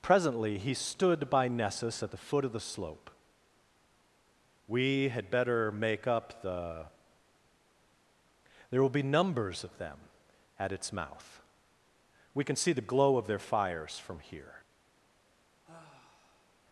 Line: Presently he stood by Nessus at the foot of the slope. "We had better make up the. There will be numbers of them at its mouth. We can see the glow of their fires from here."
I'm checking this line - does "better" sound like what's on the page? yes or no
yes